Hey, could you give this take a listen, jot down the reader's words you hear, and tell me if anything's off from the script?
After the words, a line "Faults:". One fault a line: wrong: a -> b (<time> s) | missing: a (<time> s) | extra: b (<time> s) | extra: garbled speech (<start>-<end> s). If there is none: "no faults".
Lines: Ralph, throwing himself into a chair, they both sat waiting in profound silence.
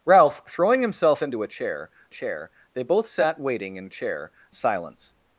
Ralph, throwing himself into a chair chair, they both sat waiting in chair silence.
Faults:
extra: chair (2.1 s)
wrong: profound -> chair (3.9 s)